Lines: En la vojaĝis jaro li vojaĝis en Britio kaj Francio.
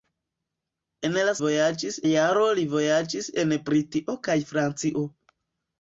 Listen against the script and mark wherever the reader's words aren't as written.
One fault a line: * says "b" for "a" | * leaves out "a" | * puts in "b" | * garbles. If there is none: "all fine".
all fine